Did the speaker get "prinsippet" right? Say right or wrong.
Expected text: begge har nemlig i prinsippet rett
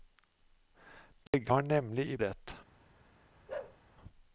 wrong